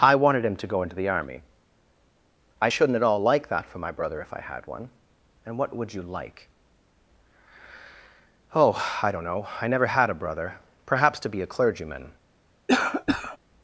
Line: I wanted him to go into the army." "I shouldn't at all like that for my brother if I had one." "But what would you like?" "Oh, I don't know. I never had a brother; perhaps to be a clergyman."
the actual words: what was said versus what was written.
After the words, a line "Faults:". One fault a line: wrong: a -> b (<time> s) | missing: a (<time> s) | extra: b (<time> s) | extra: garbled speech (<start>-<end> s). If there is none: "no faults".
I wanted him to go into the army." "I shouldn't at all like that for my brother if I had one." "And what would you like?" "Oh, I don't know. I never had a brother; perhaps to be a clergyman."
Faults:
wrong: But -> And (5.4 s)